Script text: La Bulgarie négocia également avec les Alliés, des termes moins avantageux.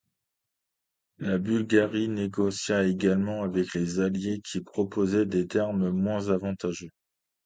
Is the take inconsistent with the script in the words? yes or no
yes